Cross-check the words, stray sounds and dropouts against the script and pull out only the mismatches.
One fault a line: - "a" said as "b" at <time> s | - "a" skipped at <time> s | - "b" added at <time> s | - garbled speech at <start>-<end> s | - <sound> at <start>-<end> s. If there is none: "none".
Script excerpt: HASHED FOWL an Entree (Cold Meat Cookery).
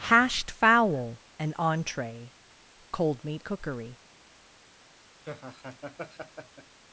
- laugh at 5.2-6.8 s